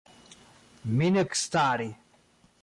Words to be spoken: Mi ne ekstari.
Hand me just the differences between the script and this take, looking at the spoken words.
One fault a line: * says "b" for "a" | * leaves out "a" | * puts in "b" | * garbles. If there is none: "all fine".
all fine